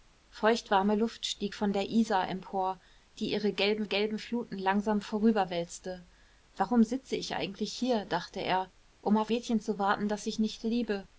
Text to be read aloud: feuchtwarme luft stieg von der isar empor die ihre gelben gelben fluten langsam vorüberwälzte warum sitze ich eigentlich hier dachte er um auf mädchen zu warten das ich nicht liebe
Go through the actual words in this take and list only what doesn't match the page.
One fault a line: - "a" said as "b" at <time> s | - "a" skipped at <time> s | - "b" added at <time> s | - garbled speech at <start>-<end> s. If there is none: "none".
none